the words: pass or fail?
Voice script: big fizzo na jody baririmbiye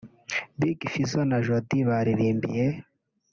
pass